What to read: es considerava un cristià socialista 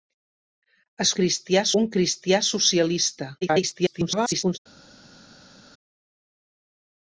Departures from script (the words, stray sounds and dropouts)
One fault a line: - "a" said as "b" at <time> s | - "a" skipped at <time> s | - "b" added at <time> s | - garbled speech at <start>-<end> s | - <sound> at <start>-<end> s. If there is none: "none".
- "considerava" said as "cristià" at 1.2 s
- garbled speech at 3.4-4.6 s